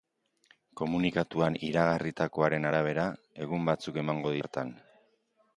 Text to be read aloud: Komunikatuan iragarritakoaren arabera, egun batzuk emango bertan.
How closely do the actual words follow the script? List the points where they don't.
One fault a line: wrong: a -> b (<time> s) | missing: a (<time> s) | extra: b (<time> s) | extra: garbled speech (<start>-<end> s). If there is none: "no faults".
no faults